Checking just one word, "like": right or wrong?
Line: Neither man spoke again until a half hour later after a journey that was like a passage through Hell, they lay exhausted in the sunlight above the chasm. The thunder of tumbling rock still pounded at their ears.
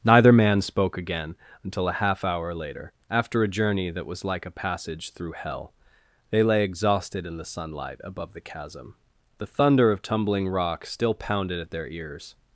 right